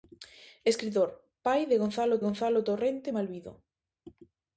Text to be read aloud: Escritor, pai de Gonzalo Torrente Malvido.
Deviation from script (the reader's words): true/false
true